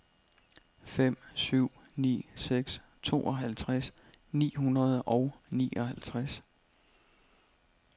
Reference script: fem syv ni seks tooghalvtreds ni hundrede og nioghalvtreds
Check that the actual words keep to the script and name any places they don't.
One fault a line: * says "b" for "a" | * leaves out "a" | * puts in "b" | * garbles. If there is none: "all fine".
all fine